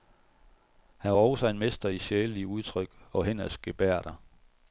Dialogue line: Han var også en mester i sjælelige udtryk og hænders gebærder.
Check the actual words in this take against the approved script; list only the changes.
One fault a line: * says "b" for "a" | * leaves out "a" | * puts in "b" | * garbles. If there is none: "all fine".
all fine